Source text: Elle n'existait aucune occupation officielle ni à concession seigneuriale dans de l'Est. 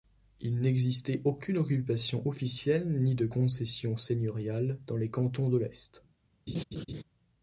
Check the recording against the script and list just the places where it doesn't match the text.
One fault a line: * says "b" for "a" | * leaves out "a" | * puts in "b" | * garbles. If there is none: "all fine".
* says "Il" for "Elle"
* says "de" for "à"
* puts in "les Cantons"